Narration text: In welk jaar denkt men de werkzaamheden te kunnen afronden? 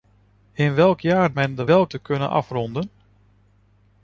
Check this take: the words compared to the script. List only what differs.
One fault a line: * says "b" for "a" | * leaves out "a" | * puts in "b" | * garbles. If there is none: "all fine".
* leaves out "denkt"
* says "welk" for "werkzaamheden"